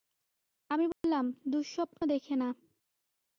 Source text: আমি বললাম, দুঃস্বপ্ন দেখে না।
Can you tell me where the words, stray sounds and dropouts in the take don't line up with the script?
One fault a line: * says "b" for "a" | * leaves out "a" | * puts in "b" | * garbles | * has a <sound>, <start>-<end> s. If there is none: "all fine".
* has a dropout, 0.9-1.0 s